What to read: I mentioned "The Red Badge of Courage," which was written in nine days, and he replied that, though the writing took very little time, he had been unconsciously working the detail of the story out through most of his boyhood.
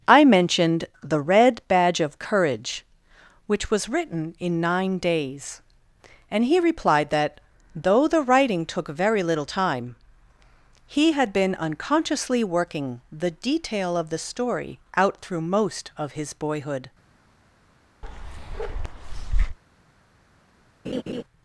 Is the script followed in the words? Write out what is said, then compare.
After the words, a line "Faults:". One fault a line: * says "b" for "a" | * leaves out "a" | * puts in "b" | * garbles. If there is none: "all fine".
I mentioned "The Red Badge of Courage," which was written in nine days, and he replied that, though the writing took very little time, he had been unconsciously working the detail of the story out through most of his boyhood.
Faults:
all fine